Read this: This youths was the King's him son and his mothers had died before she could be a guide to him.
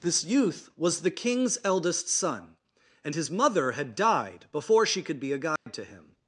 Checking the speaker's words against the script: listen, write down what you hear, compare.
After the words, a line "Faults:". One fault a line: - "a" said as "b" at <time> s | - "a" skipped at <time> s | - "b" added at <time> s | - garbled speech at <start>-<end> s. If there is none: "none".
This youth was the King's eldest son and his mother had died before she could be a guide to him.
Faults:
- "youths" said as "youth" at 0.2 s
- "him" said as "eldest" at 1.6 s
- "mothers" said as "mother" at 3.3 s